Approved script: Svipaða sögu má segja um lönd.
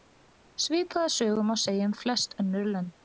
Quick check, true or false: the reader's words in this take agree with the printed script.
false